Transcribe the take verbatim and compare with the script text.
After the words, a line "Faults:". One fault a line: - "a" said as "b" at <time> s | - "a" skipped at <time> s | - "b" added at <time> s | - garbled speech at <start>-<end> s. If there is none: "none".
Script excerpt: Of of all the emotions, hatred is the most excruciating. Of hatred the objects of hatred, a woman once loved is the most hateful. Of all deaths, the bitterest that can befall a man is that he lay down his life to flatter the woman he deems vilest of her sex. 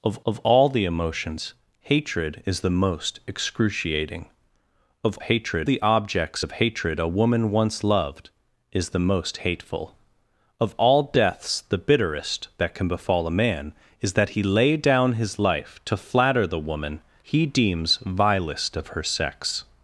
Of of all the emotions, hatred is the most excruciating. Of hatred the objects of hatred, a woman once loved is the most hateful. Of all deaths, the bitterest that can befall a man is that he lay down his life to flatter the woman he deems vilest of her sex.
Faults:
none